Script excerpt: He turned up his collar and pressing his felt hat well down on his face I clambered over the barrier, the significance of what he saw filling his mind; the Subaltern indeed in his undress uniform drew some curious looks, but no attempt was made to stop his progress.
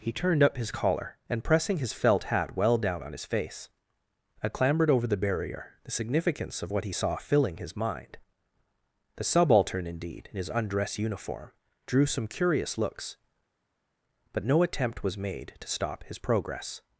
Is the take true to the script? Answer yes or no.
yes